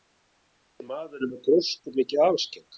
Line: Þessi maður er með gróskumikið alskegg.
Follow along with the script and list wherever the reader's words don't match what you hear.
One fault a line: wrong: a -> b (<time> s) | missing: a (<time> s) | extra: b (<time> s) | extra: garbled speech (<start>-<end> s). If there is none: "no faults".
no faults